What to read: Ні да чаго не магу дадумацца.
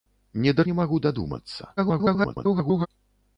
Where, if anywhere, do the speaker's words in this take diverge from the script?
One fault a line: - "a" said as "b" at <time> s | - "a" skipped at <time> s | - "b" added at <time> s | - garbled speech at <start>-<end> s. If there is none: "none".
- "чаго" skipped at 0.7 s
- garbled speech at 1.8-2.9 s